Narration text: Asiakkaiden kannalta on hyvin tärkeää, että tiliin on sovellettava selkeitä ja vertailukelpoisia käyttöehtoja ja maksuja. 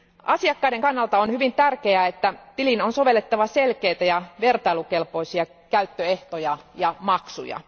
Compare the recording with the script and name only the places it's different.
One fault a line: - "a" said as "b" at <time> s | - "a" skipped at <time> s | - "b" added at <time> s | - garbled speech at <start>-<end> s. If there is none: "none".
none